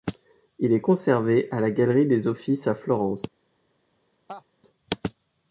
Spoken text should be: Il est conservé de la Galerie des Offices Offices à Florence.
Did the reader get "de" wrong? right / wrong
wrong